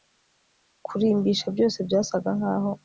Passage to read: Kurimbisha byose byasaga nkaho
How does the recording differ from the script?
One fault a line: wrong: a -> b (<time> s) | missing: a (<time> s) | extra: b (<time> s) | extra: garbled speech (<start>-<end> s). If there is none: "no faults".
no faults